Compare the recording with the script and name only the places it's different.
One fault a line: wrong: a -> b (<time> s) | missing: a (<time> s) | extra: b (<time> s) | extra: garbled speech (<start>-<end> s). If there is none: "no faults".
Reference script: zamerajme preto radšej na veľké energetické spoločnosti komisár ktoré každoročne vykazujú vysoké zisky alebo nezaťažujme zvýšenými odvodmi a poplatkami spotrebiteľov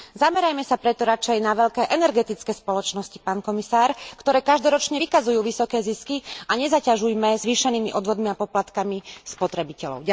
extra: sa (0.6 s)
extra: pán (3.2 s)
wrong: alebo -> a (6.4 s)